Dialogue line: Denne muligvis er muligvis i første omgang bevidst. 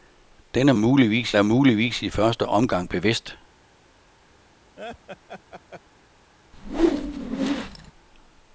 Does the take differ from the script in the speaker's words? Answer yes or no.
no